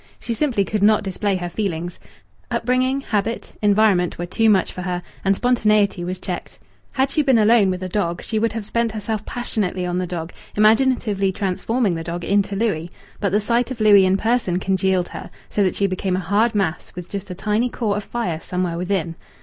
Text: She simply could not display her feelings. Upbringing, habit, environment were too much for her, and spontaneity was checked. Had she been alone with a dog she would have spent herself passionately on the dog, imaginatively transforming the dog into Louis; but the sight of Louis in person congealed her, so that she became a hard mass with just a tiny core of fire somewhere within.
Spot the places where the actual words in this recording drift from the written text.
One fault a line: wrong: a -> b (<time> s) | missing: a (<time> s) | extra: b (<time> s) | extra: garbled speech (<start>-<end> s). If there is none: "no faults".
no faults